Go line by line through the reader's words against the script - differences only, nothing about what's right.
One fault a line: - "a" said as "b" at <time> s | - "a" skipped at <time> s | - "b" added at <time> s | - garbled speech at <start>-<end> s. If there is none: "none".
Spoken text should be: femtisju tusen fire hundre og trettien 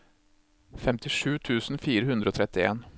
none